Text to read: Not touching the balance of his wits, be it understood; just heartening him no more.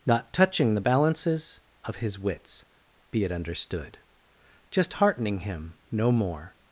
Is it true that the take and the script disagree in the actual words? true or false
true